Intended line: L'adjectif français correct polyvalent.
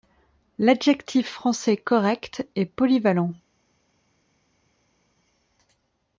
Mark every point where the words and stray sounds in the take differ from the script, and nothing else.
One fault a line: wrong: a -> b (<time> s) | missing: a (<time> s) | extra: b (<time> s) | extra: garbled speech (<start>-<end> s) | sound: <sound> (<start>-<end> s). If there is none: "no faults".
extra: est (2.5 s)